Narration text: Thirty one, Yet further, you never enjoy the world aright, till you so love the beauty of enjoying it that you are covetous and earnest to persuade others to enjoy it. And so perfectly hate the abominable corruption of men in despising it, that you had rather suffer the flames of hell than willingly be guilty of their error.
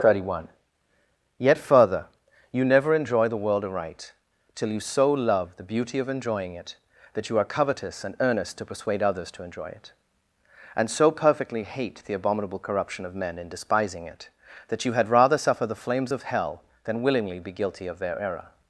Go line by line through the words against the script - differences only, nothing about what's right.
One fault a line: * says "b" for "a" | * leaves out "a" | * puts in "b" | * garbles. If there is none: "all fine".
all fine